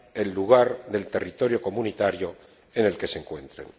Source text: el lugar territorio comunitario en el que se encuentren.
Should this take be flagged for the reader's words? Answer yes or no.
yes